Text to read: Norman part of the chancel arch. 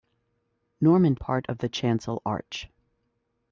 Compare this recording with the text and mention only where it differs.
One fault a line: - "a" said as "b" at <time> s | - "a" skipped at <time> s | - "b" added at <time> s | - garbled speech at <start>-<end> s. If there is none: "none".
none